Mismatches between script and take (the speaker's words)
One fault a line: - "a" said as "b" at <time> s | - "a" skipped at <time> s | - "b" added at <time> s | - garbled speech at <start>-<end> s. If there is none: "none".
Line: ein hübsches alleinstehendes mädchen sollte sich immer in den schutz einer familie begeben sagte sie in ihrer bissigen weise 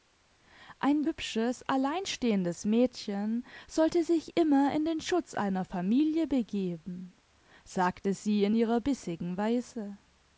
none